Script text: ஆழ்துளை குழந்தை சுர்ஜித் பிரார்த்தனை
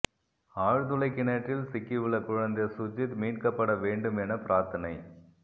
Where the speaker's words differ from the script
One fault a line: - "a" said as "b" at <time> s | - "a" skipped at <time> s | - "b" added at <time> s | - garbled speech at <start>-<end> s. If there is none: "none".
- "கிணற்றில் சிக்கியுள்ள" added at 1.1 s
- "மீட்கப்பட வேண்டும் என" added at 3.2 s